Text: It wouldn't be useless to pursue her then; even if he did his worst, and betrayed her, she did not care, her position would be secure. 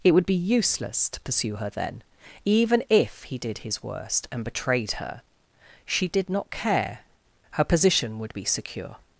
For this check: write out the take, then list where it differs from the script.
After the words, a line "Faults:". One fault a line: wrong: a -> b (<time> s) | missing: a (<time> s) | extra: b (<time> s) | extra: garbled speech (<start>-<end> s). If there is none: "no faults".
It would be useless to pursue her then; even if he did his worst, and betrayed her, she did not care, her position would be secure.
Faults:
wrong: wouldn't -> would (0.1 s)